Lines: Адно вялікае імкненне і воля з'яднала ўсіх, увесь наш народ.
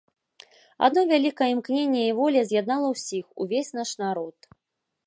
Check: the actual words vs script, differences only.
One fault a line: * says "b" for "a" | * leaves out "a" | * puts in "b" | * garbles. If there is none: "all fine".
all fine